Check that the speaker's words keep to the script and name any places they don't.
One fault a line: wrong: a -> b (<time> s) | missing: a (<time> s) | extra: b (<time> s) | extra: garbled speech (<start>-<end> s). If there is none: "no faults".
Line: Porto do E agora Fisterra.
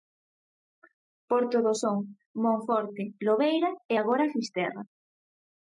extra: Son Monforte Lobeira (1.8 s)